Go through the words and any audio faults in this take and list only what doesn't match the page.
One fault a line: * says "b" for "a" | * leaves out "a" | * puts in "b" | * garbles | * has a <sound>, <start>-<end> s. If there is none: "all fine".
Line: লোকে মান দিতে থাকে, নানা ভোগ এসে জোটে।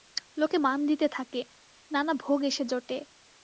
all fine